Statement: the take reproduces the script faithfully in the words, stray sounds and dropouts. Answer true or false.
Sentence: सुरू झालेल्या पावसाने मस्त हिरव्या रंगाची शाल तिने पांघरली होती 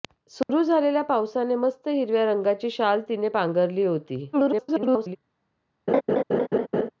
false